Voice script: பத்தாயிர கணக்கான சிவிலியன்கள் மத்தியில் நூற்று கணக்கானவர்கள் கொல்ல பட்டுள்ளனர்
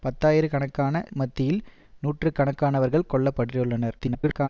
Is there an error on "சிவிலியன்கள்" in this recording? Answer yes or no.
yes